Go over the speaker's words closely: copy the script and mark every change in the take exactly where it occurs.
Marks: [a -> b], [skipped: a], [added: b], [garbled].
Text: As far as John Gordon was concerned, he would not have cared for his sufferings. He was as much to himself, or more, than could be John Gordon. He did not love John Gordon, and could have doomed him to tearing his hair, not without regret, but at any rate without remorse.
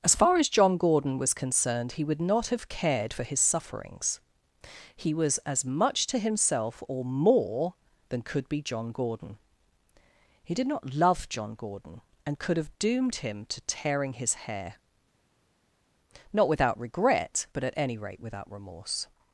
As far as John Gordon was concerned, he would not have cared for his sufferings. He was as much to himself, or more, than could be John Gordon. He did not love John Gordon, and could have doomed him to tearing his hair, not without regret, but at any rate without remorse.